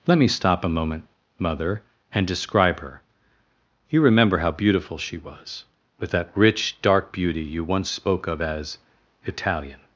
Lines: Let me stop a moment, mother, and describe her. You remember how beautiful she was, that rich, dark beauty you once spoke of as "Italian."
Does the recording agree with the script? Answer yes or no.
no